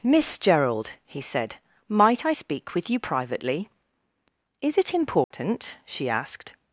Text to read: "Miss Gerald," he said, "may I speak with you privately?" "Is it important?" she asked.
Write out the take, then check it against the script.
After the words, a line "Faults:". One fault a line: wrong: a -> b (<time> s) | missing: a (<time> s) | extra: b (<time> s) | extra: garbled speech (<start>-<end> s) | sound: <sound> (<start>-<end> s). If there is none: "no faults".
"Miss Gerald," he said, "might I speak with you privately?" "Is it important?" she asked.
Faults:
wrong: may -> might (1.9 s)
sound: dropout (5.2-5.3 s)